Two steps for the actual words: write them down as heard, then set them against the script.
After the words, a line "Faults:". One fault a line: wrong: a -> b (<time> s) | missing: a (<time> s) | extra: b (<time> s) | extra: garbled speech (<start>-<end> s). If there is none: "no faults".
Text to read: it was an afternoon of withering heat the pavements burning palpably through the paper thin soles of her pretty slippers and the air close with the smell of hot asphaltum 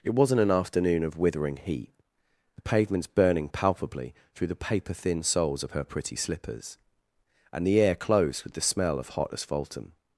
it wasn't an afternoon of withering heat the pavements burning palpably through the paper thin soles of her pretty slippers and the air close with the smell of hot asphaltum
Faults:
wrong: was -> wasn't (0.1 s)